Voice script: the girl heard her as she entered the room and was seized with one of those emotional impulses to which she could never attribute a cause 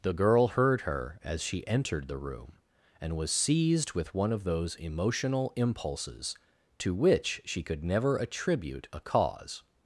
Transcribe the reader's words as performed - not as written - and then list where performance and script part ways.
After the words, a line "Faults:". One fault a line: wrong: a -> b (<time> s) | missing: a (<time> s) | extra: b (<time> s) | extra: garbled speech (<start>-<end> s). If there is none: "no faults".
the girl heard her as she entered the room and was seized with one of those emotional impulses to which she could never attribute a cause
Faults:
no faults